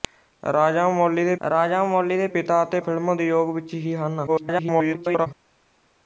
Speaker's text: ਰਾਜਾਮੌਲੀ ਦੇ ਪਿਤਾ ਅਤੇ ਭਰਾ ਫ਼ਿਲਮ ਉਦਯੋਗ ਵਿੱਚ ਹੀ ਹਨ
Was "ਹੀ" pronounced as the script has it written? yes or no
yes